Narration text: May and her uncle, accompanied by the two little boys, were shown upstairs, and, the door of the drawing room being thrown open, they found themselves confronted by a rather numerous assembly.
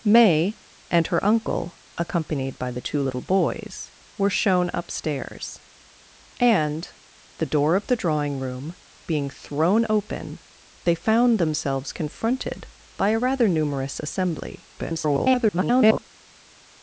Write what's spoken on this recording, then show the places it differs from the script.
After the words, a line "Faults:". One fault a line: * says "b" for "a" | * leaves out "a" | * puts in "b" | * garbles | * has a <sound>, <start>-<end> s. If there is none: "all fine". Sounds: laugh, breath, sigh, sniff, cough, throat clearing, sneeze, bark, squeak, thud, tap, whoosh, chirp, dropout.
May and her uncle, accompanied by the two little boys, were shown upstairs, and, the door of the drawing room being thrown open, they found themselves confronted by a rather numerous assembly. [garbled]
Faults:
* garbles